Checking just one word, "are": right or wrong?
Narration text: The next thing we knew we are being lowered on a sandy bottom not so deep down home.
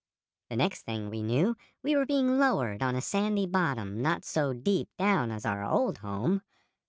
wrong